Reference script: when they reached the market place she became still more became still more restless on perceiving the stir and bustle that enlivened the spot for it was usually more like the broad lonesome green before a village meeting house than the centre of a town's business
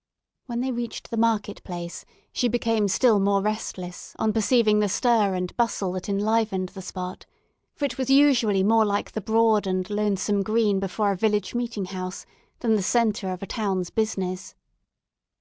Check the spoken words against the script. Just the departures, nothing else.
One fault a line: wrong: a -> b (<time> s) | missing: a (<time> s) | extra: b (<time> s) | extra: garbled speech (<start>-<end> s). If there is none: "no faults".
missing: became still more (3.4 s)
extra: and (9.7 s)